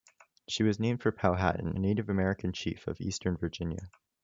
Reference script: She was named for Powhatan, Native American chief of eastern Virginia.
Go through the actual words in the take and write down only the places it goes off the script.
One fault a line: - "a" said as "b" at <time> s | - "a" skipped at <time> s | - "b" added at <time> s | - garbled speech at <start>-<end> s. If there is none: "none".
none